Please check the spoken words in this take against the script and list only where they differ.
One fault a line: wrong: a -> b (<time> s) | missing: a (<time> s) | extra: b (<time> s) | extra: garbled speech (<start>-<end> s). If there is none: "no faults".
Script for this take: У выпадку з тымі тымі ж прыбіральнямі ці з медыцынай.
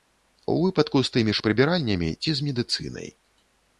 missing: тымі (1.4 s)